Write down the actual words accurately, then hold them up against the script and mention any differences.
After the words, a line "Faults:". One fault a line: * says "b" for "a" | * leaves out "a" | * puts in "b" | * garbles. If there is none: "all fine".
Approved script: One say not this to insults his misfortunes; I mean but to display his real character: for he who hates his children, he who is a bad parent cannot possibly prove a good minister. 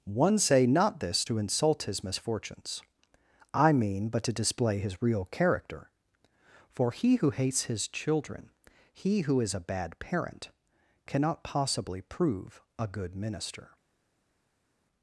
One say not this to insult his misfortunes; I mean but to display his real character: for he who hates his children, he who is a bad parent cannot possibly prove a good minister.
Faults:
* says "insult" for "insults"